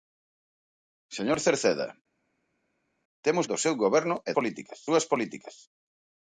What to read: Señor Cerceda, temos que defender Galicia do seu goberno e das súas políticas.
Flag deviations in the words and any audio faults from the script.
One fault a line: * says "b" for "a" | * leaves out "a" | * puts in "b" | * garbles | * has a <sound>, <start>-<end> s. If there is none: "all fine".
* leaves out "que defender Galicia"
* says "políticas" for "das"